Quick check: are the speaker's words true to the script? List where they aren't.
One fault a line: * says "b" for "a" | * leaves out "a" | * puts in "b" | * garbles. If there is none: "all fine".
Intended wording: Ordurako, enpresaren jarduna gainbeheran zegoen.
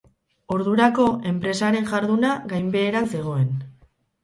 all fine